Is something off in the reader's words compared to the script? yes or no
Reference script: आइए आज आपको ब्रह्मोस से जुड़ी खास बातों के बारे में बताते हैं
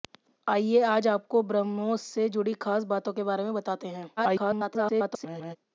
yes